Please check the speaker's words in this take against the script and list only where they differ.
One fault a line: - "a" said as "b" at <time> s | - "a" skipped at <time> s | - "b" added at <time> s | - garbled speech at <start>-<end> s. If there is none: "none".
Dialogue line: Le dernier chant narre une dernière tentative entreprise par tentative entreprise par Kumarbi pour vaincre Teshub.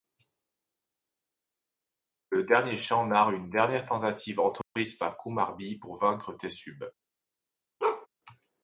- "tentative entreprise par" skipped at 5.2 s